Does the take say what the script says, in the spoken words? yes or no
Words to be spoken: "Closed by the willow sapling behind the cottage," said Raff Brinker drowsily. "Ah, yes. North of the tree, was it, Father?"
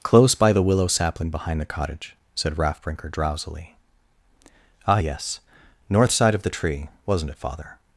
no